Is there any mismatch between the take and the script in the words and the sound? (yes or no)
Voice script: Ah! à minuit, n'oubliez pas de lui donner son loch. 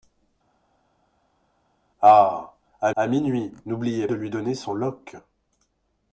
yes